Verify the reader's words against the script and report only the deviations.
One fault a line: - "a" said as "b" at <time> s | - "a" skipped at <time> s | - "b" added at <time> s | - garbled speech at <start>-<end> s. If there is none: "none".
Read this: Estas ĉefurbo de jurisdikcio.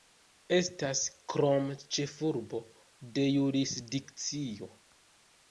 - "krome" added at 1.3 s